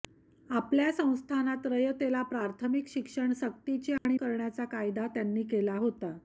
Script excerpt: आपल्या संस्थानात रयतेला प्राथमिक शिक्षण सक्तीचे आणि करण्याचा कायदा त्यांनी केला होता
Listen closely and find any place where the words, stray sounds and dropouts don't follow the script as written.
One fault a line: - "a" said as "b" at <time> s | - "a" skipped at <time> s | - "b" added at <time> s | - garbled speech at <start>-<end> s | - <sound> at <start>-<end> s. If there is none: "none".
- dropout at 4.0-4.1 s